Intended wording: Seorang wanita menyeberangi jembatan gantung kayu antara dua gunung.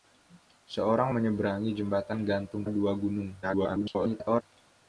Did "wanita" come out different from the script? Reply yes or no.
yes